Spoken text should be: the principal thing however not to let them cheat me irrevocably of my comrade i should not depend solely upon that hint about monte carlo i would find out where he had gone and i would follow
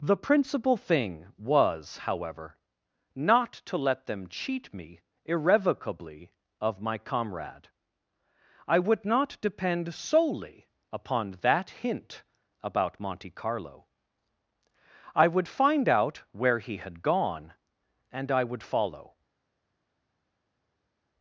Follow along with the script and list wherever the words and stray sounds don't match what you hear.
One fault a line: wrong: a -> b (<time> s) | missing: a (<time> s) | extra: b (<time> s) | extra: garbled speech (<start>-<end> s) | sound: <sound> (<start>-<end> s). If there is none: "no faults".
extra: was (1.4 s)
wrong: should -> would (8.8 s)